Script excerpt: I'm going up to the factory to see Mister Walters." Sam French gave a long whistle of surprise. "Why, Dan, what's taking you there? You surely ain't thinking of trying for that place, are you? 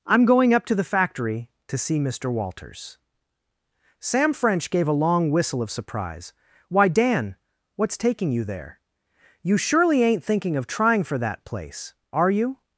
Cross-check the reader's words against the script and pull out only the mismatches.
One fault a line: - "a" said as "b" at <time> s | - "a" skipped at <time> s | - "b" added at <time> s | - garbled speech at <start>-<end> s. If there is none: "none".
none